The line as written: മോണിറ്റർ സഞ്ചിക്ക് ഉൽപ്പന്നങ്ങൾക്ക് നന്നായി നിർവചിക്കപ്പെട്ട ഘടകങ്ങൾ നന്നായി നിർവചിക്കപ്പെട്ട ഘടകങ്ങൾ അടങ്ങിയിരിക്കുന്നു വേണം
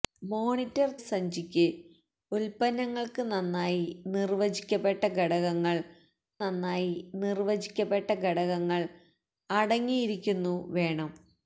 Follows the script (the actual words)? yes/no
yes